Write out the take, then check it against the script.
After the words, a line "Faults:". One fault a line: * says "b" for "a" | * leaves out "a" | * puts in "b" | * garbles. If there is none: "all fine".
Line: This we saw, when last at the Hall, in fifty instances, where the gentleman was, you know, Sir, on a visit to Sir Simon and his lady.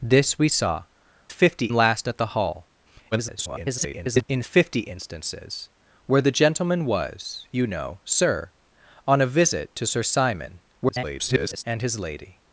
This we saw, fifty last at the Hall, [garbled] in fifty instances, where the gentleman was, you know, Sir, on a visit to Sir Simon [garbled] and his lady.
Faults:
* says "fifty" for "when"
* garbles
* garbles